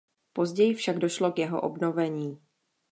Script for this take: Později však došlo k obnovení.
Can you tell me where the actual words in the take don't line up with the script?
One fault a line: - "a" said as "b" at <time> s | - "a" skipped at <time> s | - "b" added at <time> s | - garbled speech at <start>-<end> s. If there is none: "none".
- "jeho" added at 1.4 s